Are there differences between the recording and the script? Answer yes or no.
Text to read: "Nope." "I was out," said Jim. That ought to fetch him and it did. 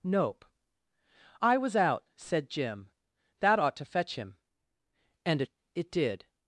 yes